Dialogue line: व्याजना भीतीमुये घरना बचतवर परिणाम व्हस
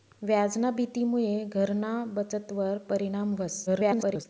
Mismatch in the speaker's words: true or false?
true